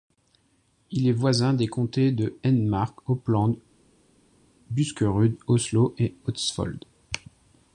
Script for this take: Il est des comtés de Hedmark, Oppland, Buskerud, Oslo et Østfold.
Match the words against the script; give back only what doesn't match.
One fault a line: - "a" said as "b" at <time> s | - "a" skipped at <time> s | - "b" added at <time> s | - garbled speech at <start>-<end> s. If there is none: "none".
- "voisin" added at 1.1 s